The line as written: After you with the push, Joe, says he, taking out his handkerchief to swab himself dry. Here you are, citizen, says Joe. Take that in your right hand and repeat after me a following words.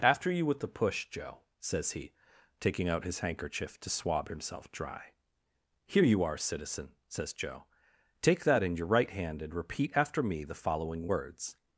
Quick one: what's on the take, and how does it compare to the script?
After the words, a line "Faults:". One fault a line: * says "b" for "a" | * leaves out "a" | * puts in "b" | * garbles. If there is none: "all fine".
After you with the push, Joe, says he, taking out his handkerchief to swab himself dry. Here you are, citizen, says Joe. Take that in your right hand and repeat after me the following words.
Faults:
* says "the" for "a"